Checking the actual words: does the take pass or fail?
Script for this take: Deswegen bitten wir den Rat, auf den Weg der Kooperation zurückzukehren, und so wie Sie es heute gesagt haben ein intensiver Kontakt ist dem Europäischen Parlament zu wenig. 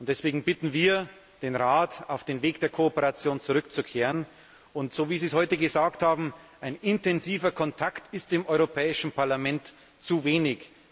pass